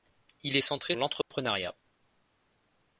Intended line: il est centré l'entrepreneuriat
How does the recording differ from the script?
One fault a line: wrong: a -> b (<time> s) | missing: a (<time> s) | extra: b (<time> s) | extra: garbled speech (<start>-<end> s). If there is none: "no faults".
no faults